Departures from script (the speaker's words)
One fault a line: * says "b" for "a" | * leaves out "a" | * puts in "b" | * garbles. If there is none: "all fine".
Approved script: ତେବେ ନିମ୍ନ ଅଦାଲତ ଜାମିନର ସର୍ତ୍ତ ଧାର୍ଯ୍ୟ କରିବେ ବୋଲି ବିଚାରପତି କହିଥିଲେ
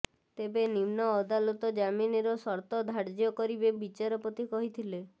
* leaves out "ବୋଲି"